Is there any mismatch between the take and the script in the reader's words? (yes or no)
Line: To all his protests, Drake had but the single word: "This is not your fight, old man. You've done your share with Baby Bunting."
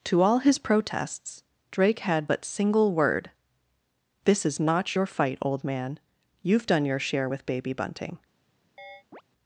yes